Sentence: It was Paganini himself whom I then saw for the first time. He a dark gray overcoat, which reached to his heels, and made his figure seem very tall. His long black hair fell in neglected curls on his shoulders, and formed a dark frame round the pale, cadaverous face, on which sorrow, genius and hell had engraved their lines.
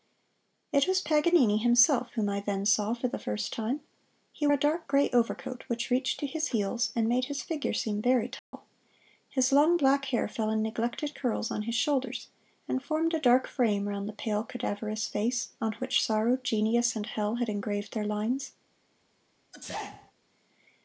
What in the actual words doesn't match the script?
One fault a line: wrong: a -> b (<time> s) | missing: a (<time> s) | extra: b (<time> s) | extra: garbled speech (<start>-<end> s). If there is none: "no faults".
no faults